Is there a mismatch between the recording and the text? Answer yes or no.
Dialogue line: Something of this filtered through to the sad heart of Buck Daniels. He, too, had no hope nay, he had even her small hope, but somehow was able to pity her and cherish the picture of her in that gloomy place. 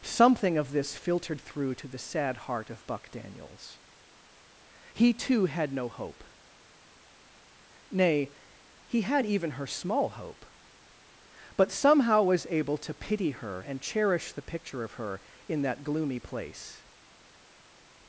no